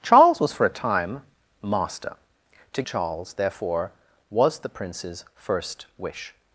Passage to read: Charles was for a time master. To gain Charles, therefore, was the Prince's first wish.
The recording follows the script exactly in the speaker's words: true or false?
false